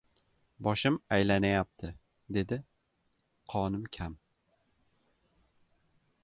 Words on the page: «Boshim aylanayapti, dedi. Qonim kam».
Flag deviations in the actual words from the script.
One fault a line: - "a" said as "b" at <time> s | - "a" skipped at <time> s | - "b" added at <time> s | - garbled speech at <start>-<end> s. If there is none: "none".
none